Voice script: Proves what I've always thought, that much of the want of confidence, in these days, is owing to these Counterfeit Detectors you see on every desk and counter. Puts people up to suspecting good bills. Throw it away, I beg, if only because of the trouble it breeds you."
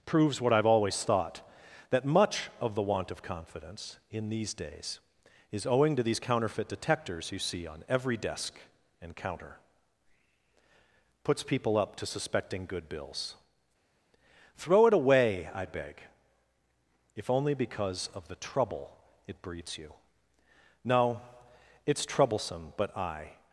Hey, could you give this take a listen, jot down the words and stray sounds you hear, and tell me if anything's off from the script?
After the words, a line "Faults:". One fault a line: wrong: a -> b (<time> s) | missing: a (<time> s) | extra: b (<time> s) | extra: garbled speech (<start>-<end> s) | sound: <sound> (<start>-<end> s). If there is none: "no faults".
Proves what I've always thought, that much of the want of confidence, in these days, is owing to these Counterfeit Detectors you see on every desk and counter. Puts people up to suspecting good bills. Throw it away, I beg, if only because of the trouble it breeds you." "No; it's troublesome, but I
Faults:
extra: No it's troublesome but I (20.8 s)